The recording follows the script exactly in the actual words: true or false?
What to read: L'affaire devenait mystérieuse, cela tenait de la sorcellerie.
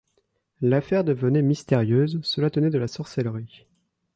true